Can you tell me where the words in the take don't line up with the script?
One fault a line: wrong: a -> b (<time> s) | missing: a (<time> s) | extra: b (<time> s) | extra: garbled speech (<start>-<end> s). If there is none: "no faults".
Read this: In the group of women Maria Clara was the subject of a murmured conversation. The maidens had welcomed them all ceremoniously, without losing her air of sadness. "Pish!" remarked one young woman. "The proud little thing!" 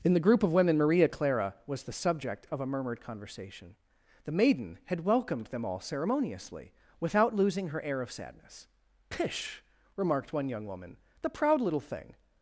wrong: maidens -> maiden (4.3 s)